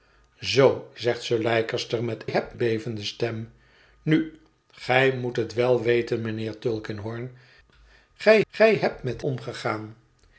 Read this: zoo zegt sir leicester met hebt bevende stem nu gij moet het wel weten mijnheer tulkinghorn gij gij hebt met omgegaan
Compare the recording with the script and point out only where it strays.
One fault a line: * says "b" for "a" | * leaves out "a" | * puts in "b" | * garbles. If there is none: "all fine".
all fine